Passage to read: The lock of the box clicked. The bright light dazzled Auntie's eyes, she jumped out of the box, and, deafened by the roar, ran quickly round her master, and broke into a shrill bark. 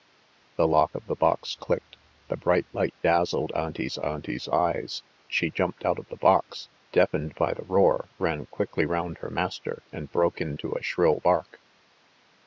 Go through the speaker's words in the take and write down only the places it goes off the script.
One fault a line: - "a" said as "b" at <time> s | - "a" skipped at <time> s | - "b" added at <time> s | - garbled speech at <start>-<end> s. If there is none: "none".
- "Auntie's" added at 4.0 s
- "and" skipped at 6.7 s